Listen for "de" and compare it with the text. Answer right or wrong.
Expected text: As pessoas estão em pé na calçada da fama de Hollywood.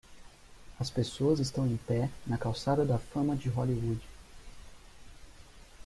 right